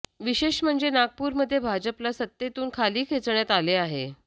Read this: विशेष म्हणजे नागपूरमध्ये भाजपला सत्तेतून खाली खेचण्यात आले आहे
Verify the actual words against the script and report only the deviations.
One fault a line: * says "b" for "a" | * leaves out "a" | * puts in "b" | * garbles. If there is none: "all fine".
all fine